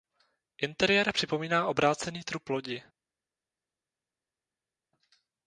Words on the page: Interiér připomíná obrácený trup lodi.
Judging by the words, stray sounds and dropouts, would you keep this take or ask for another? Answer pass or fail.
pass